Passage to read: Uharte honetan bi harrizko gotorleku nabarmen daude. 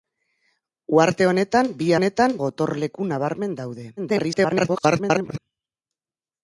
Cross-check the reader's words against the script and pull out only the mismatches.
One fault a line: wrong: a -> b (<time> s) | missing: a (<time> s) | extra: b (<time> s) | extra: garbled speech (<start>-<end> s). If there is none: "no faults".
wrong: harrizko -> honetan (2.0 s)
extra: garbled speech (4.0-5.4 s)